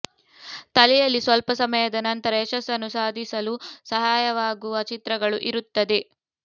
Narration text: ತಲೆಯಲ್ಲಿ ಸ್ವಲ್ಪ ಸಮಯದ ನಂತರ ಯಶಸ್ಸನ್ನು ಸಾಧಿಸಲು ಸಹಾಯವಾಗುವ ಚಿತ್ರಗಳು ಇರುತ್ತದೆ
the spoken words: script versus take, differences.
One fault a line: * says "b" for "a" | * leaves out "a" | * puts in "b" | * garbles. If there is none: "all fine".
all fine